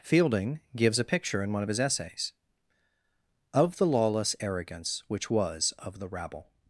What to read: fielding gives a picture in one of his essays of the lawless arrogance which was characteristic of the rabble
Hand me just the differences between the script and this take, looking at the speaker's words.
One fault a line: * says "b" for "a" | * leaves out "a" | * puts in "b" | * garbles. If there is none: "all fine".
* leaves out "characteristic"